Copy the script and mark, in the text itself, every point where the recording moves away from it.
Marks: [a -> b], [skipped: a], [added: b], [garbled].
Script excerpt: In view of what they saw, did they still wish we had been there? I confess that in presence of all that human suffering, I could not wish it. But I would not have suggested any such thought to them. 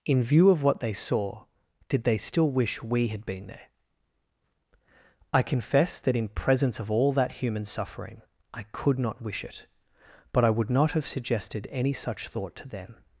In view of what they saw, did they still wish we had been there? I confess that in presence of all that human suffering, I could not wish it. But I would not have suggested any such thought to them.